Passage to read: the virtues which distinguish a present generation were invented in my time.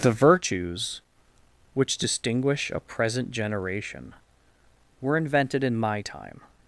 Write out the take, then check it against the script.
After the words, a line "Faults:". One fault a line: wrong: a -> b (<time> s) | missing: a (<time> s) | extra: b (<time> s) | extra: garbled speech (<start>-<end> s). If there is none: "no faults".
the virtues which distinguish a present generation were invented in my time.
Faults:
no faults